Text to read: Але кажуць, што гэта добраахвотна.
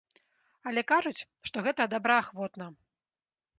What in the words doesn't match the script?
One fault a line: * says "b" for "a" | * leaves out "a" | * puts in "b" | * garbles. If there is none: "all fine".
all fine